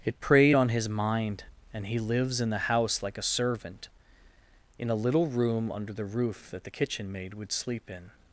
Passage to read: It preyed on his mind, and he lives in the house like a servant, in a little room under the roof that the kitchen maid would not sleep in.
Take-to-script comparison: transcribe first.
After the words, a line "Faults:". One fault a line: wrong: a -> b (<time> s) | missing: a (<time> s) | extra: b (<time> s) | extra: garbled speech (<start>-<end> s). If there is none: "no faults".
It preyed on his mind, and he lives in the house like a servant, in a little room under the roof that the kitchen maid would sleep in.
Faults:
missing: not (7.5 s)